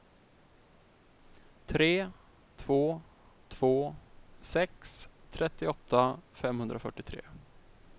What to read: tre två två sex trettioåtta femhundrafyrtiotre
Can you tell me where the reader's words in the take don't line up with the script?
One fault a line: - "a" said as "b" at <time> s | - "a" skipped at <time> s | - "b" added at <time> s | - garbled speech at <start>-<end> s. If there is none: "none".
none